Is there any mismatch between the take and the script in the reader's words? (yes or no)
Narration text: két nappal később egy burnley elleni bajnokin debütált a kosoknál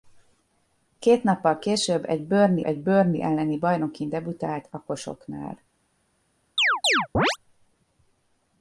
yes